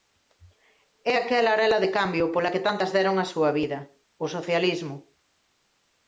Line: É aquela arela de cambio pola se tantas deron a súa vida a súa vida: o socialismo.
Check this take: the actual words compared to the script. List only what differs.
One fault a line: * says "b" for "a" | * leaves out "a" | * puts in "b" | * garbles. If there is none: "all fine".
* says "que" for "se"
* leaves out "a súa vida"